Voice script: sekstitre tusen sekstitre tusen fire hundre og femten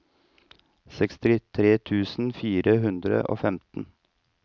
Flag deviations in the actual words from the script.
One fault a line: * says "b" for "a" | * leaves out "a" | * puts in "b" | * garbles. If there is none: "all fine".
* leaves out "sekstitre tusen"